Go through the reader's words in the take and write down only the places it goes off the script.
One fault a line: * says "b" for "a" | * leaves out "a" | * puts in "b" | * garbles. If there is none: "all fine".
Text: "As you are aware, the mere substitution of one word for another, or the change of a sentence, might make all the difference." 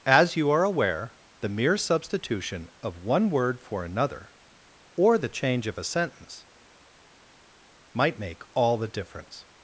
all fine